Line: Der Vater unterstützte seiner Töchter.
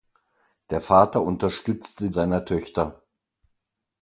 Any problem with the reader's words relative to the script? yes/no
no